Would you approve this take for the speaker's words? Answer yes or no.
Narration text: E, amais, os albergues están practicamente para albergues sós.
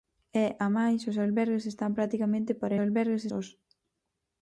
yes